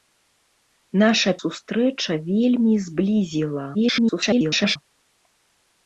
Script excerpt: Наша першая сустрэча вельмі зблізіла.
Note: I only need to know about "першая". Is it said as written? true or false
false